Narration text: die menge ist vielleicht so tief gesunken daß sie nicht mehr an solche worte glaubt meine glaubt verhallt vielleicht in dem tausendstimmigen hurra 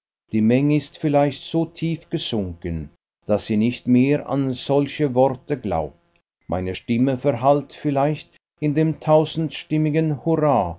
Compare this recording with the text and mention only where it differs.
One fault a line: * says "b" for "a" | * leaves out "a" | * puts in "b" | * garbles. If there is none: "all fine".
* says "stimme" for "glaubt"